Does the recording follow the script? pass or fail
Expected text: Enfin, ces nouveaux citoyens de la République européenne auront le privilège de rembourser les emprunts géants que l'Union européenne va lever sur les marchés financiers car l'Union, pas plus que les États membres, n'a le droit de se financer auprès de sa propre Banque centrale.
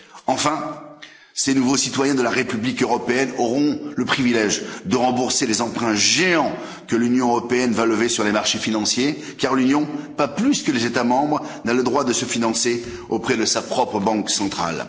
pass